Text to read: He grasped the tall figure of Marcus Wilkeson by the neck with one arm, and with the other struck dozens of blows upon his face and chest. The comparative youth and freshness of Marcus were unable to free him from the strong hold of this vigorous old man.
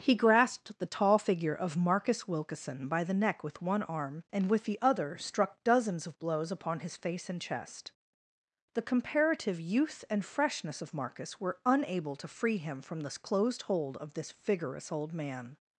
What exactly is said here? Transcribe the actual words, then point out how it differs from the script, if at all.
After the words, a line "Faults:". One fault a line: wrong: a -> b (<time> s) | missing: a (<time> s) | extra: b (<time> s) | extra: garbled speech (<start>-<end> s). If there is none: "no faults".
He grasped the tall figure of Marcus Wilkeson by the neck with one arm, and with the other struck dozens of blows upon his face and chest. The comparative youth and freshness of Marcus were unable to free him from the closed hold of this vigorous old man.
Faults:
wrong: strong -> closed (13.2 s)